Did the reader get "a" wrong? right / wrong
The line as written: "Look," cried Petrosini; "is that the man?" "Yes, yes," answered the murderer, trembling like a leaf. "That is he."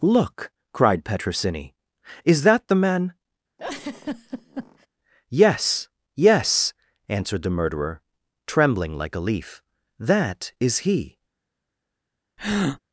right